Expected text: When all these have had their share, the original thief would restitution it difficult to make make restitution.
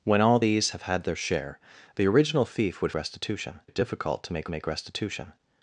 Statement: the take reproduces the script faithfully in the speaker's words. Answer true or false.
true